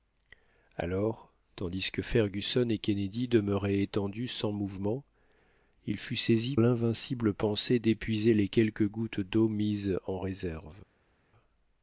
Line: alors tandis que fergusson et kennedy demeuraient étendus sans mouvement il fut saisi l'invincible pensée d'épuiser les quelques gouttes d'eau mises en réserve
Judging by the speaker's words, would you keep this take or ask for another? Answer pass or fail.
pass